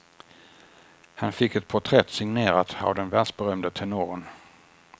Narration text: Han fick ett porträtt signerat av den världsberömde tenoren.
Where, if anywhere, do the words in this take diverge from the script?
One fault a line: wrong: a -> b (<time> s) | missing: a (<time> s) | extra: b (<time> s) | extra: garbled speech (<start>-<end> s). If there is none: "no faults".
no faults